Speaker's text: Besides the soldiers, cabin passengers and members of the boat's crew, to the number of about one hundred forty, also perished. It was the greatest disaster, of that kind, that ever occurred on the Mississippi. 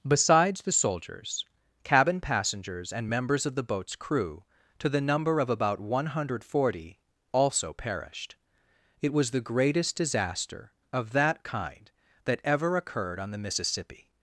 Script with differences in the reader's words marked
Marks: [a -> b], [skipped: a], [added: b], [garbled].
Besides the soldiers, cabin passengers and members of the boat's crew, to the number of about one hundred forty, also perished. It was the greatest disaster, of that kind, that ever occurred on the Mississippi.